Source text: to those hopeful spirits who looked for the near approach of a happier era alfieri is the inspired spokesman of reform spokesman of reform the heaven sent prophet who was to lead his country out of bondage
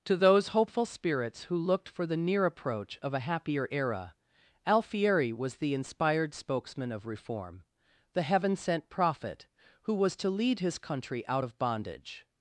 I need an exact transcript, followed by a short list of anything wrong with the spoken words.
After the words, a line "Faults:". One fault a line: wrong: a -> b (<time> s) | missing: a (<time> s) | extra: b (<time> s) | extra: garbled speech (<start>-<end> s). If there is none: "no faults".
to those hopeful spirits who looked for the near approach of a happier era alfieri was the inspired spokesman of reform the heaven sent prophet who was to lead his country out of bondage
Faults:
wrong: is -> was (5.3 s)
missing: spokesman of reform (7.7 s)